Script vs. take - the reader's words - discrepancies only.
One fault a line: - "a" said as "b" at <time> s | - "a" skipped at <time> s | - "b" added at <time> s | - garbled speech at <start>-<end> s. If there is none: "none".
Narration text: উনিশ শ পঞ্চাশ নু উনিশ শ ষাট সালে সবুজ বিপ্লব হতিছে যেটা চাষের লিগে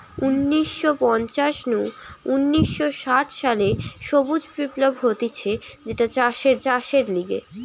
- "চাষের" added at 6.6 s